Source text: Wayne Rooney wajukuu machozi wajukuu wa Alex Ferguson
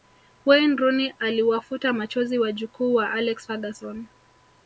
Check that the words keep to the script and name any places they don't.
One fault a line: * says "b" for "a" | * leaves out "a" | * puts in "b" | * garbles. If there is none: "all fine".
* says "aliwafuta" for "wajukuu"